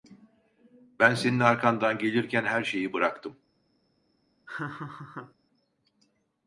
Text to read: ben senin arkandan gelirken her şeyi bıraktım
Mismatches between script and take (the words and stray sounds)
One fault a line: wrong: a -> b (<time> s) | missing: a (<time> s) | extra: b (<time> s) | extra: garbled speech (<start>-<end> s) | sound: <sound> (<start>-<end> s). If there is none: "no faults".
sound: laugh (4.5-5.3 s)